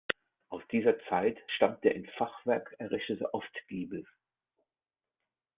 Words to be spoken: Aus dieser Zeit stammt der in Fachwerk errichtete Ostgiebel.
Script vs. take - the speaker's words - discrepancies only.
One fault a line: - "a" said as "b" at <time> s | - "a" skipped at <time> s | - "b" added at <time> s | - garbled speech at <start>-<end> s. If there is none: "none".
none